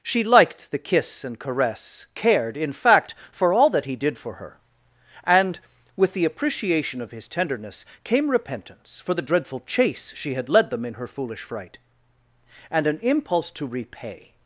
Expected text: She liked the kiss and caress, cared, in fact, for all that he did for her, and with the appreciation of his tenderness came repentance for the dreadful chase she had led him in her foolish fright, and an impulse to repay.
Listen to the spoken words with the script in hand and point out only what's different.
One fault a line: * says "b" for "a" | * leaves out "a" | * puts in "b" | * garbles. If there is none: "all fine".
* says "them" for "him"